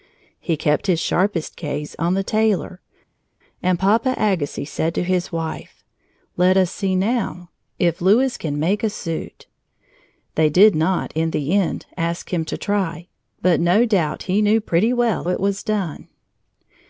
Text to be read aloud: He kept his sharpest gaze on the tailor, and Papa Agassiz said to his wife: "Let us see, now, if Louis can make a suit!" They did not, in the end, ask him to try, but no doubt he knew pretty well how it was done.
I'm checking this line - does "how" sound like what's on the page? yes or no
no